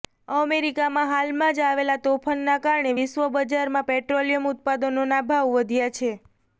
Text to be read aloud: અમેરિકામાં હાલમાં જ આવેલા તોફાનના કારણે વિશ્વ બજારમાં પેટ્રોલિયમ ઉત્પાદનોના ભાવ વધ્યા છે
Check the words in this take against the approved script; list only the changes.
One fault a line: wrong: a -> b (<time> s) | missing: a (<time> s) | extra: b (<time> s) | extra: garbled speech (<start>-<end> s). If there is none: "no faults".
no faults